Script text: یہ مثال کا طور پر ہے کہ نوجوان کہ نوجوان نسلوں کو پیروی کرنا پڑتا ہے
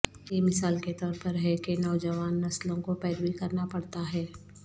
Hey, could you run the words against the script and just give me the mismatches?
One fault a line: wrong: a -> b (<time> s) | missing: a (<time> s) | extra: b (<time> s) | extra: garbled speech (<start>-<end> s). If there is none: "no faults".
wrong: کا -> کے (0.8 s)
missing: کہ نوجوان (2.4 s)